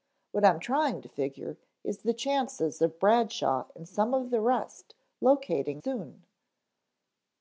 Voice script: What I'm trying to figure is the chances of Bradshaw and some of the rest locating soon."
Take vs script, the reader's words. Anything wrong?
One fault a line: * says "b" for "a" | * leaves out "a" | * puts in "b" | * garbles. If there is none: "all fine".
all fine